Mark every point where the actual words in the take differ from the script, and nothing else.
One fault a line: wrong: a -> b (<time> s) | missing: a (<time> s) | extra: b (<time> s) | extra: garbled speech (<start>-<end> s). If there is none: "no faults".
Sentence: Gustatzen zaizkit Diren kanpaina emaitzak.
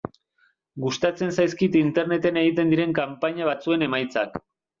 extra: Interneten egiten (1.8 s)
extra: batzuen (3.5 s)